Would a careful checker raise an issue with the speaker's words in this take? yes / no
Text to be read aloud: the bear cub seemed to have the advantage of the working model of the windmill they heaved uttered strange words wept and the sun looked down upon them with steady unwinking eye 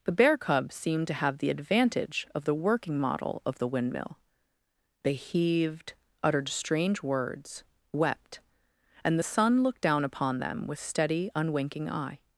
no